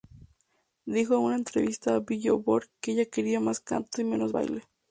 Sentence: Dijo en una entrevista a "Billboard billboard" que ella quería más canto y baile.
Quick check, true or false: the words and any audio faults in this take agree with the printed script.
false